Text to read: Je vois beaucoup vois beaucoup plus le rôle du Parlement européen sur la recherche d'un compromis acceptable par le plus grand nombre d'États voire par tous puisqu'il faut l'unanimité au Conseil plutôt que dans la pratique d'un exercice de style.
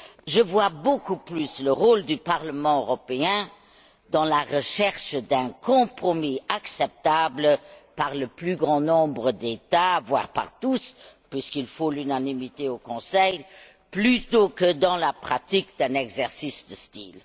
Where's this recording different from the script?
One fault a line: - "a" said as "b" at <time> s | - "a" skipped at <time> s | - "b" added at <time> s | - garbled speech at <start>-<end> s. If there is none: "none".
- "vois beaucoup" skipped at 1.2 s
- "sur" said as "dans" at 4.1 s